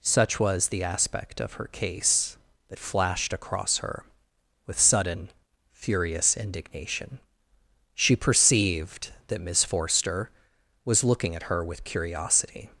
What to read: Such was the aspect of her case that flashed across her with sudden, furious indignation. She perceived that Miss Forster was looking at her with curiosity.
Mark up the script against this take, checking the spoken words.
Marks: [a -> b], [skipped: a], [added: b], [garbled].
Such was the aspect of her case that flashed across her with sudden, furious indignation. She perceived that Miss Forster was looking at her with curiosity.